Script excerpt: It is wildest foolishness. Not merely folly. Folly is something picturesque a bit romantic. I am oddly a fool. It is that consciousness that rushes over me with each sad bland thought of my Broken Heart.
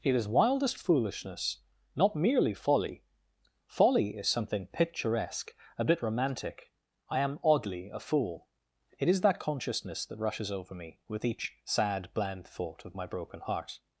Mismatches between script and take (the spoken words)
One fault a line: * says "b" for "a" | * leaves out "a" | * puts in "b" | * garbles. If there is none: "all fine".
all fine